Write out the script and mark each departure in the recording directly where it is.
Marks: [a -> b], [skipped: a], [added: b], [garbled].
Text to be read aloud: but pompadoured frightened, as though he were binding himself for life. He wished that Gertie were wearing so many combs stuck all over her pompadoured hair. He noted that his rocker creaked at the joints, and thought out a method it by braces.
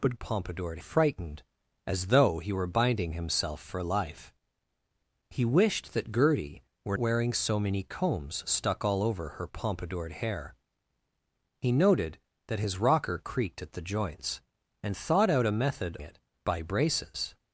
but pompadoured frightened, as though he were binding himself for life. He wished that Gertie were wearing so many combs stuck all over her pompadoured hair. He noted that his rocker creaked at the joints, and thought out a method it by braces.